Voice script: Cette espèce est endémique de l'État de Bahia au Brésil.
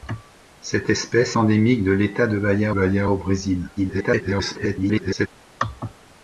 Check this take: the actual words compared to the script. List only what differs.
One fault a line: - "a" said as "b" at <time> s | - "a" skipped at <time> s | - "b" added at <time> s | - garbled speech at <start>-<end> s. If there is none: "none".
- "est" skipped at 1.4 s
- "Bahia" added at 2.7 s
- garbled speech at 3.8-5.3 s